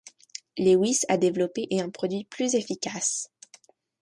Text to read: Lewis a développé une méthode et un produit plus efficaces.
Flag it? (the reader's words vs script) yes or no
yes